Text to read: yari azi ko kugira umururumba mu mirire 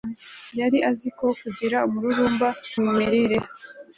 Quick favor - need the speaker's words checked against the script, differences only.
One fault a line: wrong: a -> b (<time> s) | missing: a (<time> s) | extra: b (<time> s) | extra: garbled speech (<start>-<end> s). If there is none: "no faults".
no faults